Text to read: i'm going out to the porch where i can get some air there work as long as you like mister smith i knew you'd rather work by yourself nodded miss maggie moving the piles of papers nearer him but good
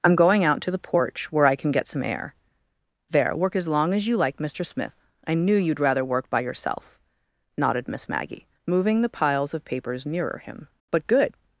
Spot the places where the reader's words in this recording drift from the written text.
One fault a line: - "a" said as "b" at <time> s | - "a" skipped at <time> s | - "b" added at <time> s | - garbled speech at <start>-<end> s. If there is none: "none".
none